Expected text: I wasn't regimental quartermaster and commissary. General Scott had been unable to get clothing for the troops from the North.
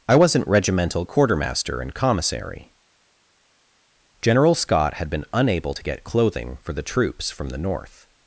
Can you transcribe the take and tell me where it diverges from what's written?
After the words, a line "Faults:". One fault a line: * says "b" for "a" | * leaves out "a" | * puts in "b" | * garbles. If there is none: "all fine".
I wasn't regimental quartermaster and commissary. General Scott had been unable to get clothing for the troops from the North.
Faults:
all fine